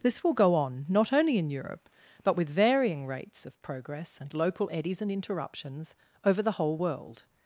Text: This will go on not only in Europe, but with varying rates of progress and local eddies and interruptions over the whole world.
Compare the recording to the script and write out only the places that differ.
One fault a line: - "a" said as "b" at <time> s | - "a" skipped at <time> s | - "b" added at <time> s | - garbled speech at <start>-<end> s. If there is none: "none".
none